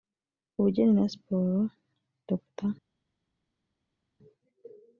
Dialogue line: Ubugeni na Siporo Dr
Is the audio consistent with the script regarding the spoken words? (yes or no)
yes